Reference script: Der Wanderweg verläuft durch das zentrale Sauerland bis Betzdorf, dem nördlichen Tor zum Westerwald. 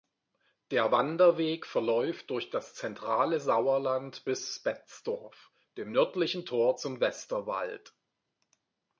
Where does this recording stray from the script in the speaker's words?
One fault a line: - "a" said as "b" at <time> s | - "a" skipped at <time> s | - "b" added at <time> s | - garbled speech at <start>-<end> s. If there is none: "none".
none